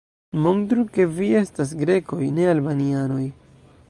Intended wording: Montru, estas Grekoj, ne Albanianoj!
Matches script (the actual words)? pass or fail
fail